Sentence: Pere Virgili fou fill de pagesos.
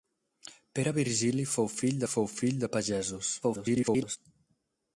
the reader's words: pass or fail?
fail